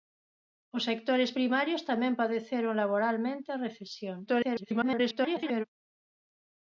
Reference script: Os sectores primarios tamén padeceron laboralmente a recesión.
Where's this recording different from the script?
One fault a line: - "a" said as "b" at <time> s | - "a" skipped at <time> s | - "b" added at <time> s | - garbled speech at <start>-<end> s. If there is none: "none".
- garbled speech at 4.3-5.6 s